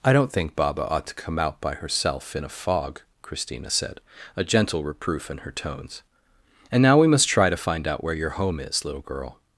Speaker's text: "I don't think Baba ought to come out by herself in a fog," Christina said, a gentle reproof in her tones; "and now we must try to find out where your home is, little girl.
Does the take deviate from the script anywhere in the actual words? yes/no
no